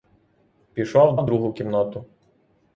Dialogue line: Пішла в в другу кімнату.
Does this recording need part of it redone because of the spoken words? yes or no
no